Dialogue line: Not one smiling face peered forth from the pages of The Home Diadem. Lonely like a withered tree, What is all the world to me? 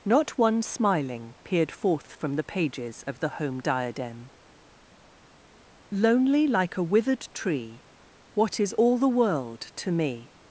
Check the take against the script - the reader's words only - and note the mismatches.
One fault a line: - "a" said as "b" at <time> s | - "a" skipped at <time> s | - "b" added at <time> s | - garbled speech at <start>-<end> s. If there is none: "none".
- "face" skipped at 1.4 s